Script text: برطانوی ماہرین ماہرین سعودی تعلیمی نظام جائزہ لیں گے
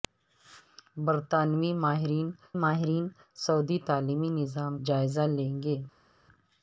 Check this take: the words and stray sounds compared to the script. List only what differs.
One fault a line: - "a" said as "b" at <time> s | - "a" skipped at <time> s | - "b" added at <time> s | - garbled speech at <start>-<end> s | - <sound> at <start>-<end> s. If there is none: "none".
none